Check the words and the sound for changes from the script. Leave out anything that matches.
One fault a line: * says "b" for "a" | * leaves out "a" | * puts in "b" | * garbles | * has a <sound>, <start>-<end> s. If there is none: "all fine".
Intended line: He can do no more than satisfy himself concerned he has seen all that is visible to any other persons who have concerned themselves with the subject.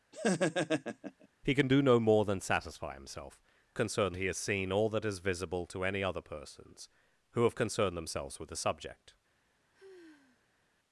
* has a laugh, 0.1-1.3 s
* has a sigh, 9.7-10.6 s